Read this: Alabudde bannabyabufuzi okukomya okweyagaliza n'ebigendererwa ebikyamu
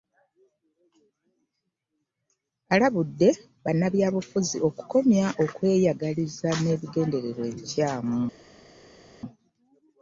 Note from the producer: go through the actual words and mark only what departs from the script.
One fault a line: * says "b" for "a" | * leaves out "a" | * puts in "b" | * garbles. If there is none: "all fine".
all fine